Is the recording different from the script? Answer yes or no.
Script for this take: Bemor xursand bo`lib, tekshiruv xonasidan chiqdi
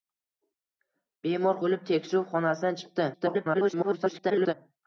yes